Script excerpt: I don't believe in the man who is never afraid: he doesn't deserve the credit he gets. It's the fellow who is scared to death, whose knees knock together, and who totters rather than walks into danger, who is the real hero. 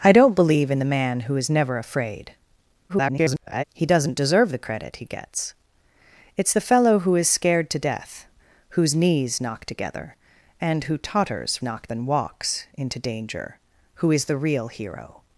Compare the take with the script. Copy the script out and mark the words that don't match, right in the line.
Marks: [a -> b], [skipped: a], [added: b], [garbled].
I don't believe in the man who is never afraid: [garbled] he doesn't deserve the credit he gets. It's the fellow who is scared to death, whose knees knock together, and who totters [rather -> knock] than walks into danger, who is the real hero.